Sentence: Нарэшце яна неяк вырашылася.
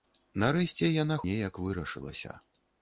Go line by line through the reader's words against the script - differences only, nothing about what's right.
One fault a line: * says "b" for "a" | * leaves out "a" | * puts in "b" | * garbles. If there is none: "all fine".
all fine